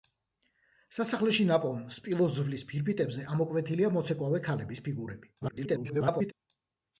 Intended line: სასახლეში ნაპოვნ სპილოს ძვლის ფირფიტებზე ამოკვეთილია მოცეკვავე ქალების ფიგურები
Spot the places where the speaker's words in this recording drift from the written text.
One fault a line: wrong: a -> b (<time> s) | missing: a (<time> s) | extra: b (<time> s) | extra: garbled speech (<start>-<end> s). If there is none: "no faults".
extra: garbled speech (5.4-6.3 s)